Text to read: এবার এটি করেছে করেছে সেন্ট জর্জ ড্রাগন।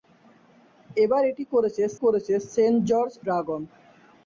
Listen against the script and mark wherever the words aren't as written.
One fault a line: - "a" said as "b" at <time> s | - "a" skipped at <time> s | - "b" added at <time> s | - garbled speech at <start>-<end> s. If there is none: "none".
none